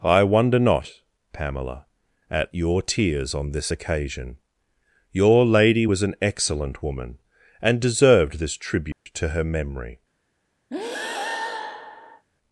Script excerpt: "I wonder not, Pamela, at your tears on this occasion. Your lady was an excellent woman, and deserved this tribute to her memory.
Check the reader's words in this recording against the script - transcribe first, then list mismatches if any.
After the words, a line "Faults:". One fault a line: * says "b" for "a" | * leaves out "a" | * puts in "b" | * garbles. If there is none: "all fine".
"I wonder not, Pamela, at your tears on this occasion. Your lady was an excellent woman, and deserved this tribute to her memory.
Faults:
all fine